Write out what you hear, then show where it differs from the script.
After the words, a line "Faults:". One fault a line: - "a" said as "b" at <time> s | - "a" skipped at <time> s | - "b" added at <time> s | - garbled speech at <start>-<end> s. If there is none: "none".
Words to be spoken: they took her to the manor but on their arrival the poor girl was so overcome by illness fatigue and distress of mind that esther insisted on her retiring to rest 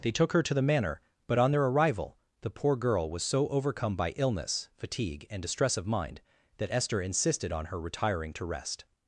they took her to the manor but on their arrival the poor girl was so overcome by illness fatigue and distress of mind that esther insisted on her retiring to rest
Faults:
none